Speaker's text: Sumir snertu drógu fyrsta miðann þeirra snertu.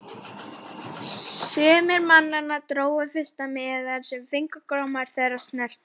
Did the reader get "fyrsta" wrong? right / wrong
right